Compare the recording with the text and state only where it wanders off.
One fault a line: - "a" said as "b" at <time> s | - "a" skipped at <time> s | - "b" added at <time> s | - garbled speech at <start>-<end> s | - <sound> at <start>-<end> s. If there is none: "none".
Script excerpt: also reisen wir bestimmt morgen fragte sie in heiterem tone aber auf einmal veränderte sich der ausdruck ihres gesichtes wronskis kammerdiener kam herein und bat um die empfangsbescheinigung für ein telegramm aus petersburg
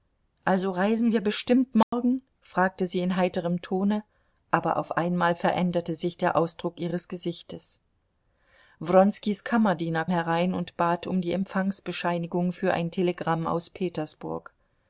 - dropout at 1.8-1.9 s
- "kam" skipped at 10.1 s